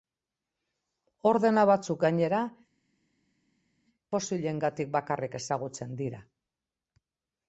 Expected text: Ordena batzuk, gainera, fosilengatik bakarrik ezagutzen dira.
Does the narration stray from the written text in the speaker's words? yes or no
no